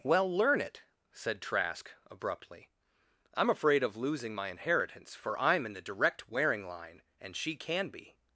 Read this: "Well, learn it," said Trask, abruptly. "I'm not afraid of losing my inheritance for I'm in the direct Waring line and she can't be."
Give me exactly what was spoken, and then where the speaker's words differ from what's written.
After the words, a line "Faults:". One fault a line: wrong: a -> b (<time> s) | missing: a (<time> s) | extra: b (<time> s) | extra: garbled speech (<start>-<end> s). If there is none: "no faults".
"Well, learn it," said Trask, abruptly. "I'm afraid of losing my inheritance for I'm in the direct Waring line and she can be."
Faults:
missing: not (3.5 s)
wrong: can't -> can (7.5 s)